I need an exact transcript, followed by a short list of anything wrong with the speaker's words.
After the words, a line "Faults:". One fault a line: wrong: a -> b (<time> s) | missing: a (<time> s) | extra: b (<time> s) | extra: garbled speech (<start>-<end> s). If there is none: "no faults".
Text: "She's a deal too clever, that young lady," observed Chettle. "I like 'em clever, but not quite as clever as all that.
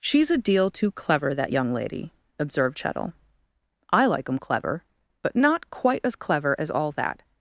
"She's a deal too clever, that young lady," observed Chettle. "I like 'em clever, but not quite as clever as all that.
Faults:
no faults